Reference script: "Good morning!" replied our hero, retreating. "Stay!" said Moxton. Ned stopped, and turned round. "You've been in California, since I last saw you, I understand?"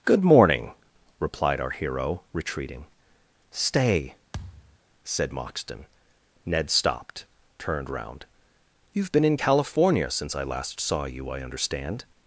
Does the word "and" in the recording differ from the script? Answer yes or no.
yes